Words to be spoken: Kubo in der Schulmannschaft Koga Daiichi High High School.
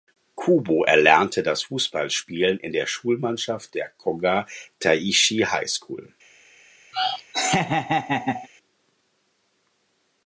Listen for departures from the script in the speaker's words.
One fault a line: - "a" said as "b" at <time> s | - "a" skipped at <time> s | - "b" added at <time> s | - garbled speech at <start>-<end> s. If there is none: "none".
- "erlernte das Fußballspielen" added at 0.8 s
- "der" added at 3.7 s
- "High" skipped at 5.7 s